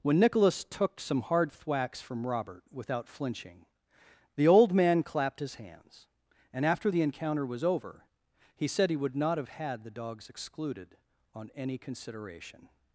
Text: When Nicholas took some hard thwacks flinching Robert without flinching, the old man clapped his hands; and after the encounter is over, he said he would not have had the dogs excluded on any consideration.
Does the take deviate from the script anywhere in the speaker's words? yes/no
yes